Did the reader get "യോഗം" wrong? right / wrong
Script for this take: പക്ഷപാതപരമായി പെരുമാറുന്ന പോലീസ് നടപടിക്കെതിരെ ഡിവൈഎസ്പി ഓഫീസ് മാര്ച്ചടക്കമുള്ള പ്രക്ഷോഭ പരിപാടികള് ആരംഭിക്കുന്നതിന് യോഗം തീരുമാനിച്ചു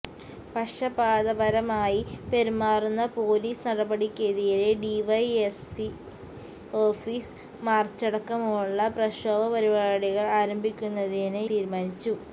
wrong